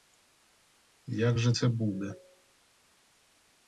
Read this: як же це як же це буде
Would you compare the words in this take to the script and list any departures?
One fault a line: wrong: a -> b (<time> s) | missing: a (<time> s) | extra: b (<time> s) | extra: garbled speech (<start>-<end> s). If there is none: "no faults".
missing: як же це (1.7 s)